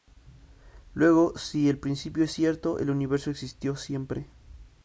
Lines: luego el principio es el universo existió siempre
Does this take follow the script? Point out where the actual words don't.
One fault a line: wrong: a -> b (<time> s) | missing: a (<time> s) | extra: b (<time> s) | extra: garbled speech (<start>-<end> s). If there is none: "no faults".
extra: si (1.4 s)
extra: cierto (2.3 s)